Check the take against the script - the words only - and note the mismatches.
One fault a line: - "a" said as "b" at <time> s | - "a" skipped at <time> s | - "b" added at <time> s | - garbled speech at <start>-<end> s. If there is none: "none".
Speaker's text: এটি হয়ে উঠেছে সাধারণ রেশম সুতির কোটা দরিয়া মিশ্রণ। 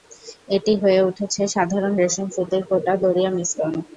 none